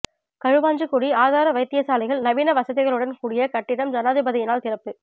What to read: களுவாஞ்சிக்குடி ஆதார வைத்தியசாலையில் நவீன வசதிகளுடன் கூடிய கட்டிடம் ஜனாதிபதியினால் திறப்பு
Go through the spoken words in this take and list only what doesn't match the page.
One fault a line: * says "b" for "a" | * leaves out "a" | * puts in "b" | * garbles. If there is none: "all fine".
all fine